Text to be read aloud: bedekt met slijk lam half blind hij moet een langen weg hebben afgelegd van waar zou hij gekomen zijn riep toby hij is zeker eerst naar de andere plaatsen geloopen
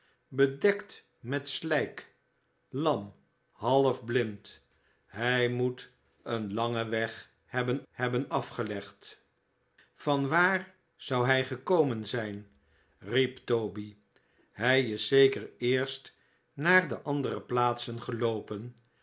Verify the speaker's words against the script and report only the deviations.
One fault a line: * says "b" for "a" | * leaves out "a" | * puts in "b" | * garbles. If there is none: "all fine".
* puts in "hebben"